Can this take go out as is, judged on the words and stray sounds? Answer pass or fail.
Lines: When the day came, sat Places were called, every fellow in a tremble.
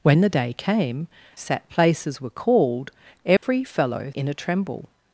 fail